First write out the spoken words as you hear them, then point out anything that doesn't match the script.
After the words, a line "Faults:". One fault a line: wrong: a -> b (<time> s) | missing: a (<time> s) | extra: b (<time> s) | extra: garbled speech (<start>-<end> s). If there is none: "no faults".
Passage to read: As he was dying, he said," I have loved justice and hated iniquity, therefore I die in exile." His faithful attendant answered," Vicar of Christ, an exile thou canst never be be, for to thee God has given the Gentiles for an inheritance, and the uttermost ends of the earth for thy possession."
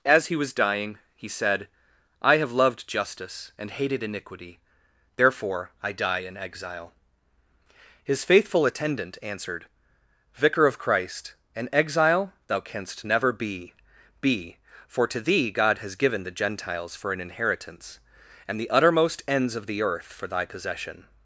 As he was dying, he said," I have loved justice and hated iniquity, therefore I die in exile." His faithful attendant answered," Vicar of Christ, an exile thou canst never be be, for to thee God has given the Gentiles for an inheritance, and the uttermost ends of the earth for thy possession."
Faults:
no faults